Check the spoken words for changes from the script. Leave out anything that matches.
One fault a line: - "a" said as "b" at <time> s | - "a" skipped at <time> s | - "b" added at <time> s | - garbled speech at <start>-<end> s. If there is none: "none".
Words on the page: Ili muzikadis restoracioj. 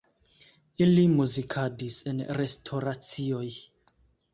- "en" added at 2.1 s